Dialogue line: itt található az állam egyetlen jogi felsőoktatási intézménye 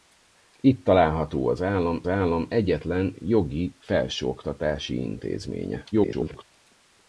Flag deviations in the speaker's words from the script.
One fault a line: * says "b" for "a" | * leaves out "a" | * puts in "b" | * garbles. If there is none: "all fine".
* puts in "állam"
* garbles